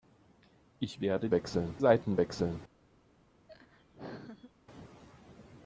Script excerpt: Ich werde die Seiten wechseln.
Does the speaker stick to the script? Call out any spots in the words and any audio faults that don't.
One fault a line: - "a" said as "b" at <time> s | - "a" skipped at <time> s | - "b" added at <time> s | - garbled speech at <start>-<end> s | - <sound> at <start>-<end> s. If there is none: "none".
- "die" said as "wechseln" at 1.3 s
- laugh at 3.5-4.5 s